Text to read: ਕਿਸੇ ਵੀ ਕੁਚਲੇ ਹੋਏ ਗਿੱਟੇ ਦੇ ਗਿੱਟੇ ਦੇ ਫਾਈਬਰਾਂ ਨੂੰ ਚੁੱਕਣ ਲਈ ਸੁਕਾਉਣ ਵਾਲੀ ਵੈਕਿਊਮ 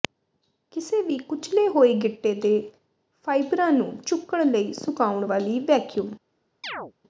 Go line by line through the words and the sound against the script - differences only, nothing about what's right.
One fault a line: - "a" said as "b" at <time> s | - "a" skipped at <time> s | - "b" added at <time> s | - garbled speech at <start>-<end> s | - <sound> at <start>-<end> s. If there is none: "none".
- "ਗਿੱਟੇ ਦੇ" skipped at 2.7 s
- chirp at 6.6-6.9 s